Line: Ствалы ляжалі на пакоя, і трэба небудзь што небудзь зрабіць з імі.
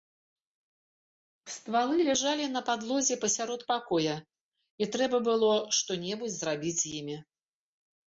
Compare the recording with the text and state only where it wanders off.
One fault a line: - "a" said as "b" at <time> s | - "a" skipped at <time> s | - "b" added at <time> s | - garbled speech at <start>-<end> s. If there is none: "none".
- "падлозе пасярод" added at 2.7 s
- "небудзь" said as "было" at 5.3 s